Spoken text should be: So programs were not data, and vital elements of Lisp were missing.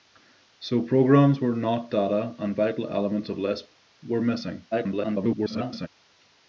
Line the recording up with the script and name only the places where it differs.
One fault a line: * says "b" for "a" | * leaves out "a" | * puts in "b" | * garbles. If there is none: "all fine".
* garbles